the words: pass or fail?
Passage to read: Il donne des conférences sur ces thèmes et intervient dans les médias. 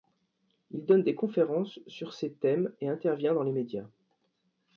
pass